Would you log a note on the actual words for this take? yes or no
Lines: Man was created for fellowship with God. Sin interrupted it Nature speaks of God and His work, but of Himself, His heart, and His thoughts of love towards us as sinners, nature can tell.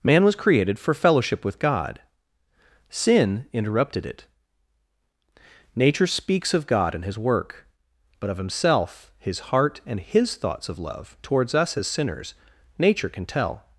no